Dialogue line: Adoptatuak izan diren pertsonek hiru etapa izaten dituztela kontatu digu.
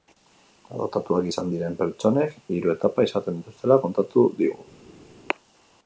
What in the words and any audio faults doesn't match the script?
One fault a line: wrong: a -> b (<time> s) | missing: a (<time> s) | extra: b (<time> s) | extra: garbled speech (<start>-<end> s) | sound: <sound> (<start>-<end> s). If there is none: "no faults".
no faults